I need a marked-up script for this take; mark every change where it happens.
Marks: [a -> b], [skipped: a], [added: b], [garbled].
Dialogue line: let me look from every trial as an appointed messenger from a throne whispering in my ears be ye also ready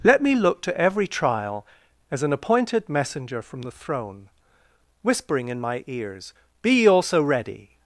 let me look [from -> to] every trial as an appointed messenger from [a -> the] throne whispering in my ears be ye also ready